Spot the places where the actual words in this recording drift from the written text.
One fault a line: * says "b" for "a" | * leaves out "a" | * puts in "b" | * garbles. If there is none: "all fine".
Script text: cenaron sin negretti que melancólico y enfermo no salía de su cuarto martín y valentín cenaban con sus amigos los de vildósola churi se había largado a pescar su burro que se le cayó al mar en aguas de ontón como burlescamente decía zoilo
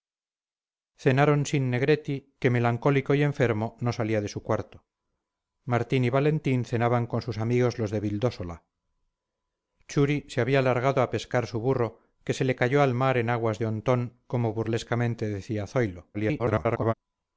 * garbles